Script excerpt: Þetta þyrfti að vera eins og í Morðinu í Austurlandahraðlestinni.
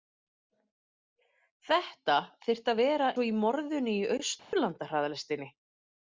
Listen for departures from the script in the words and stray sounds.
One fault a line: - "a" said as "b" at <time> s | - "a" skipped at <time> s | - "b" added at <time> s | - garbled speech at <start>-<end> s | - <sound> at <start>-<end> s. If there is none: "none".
- "eins" skipped at 3.1 s
- dropout at 4.4-4.5 s